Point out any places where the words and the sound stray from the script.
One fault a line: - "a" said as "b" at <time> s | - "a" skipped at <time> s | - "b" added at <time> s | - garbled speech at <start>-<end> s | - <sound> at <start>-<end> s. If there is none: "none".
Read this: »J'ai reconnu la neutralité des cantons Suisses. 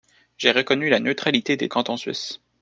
none